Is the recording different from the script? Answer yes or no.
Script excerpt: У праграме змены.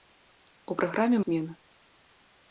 no